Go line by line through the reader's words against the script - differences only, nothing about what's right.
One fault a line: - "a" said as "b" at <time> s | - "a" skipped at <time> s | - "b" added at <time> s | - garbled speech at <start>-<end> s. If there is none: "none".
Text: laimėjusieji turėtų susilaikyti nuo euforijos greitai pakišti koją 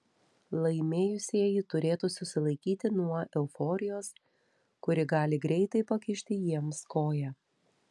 - "kuri gali" added at 4.9 s
- "jiems" added at 6.5 s